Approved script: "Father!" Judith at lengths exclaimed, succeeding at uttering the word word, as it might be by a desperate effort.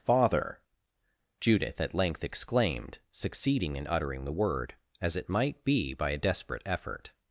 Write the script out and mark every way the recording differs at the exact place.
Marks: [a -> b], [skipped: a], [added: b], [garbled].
"Father!" Judith at [lengths -> length] exclaimed, succeeding [at -> in] uttering the word [skipped: word,] as it might be by a desperate effort.